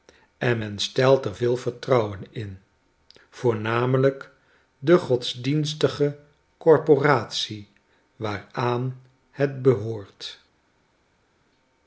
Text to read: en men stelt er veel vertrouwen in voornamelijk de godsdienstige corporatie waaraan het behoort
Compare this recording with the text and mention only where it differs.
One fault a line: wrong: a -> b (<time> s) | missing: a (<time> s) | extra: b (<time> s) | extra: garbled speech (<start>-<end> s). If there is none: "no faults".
no faults